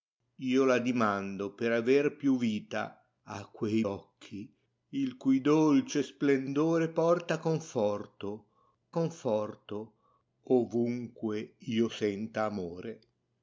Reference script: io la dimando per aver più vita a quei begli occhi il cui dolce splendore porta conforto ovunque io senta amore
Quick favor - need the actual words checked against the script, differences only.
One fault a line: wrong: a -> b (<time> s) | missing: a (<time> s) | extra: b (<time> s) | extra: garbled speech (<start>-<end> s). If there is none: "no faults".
missing: begli (3.9 s)
extra: conforto (8.9 s)